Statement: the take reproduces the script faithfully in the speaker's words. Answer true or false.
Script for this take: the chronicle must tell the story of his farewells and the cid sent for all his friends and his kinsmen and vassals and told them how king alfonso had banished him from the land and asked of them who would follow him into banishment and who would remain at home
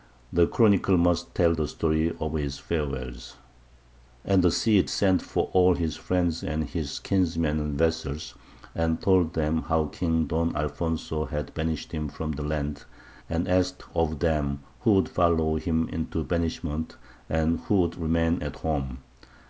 false